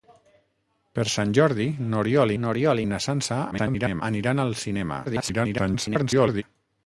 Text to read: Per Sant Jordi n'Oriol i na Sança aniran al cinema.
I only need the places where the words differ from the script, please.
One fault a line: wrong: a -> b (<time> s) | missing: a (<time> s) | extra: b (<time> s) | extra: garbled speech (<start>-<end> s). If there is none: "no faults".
extra: n'Oriol (2.4 s)
extra: garbled speech (3.5-4.0 s)
extra: garbled speech (5.0-6.4 s)